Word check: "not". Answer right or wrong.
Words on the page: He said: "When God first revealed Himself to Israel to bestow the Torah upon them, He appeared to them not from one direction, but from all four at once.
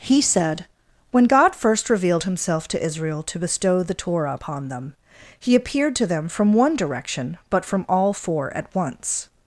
wrong